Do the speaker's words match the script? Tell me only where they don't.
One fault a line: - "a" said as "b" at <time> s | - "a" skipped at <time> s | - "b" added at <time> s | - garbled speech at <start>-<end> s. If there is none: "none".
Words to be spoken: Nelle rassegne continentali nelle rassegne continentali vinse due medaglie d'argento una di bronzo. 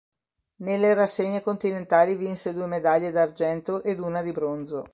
- "nelle rassegne continentali" skipped at 2.1 s
- "ed" added at 3.8 s